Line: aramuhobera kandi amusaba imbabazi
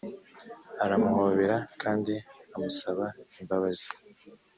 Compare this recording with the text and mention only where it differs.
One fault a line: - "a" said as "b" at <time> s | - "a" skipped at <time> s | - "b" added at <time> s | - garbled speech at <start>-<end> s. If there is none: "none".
none